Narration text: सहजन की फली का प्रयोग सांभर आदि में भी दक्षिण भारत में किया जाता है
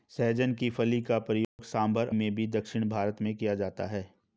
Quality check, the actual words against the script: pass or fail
fail